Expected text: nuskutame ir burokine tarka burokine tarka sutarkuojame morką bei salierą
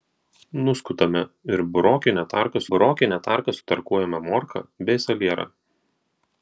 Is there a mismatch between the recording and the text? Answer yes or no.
no